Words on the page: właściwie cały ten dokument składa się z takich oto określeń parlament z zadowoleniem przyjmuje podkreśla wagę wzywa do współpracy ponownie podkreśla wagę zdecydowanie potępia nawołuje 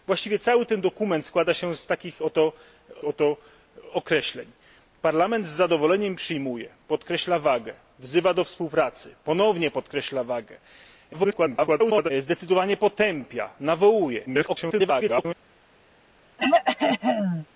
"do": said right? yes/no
yes